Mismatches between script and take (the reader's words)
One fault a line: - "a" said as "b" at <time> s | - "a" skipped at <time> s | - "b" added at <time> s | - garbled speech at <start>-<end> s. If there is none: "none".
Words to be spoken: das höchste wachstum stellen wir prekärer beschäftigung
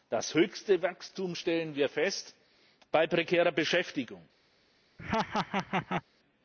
- "fest bei" added at 1.9 s